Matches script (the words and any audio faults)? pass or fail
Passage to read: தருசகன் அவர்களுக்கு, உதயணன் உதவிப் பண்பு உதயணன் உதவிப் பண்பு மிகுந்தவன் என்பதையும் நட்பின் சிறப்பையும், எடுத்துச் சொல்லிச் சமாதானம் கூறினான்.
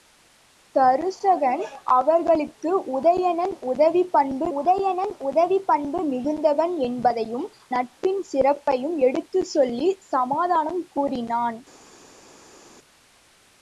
pass